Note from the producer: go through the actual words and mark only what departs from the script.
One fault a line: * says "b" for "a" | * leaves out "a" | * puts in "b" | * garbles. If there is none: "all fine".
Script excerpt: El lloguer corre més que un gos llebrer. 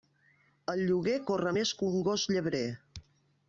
all fine